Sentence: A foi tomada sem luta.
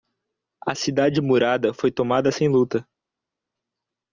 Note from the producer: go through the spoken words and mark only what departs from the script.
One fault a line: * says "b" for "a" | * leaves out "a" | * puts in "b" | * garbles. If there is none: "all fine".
* puts in "cidade murada"